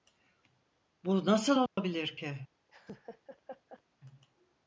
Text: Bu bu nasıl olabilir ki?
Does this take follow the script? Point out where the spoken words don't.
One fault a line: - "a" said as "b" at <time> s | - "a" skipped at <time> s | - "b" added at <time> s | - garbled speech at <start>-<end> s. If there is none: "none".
- "bu" skipped at 1.2 s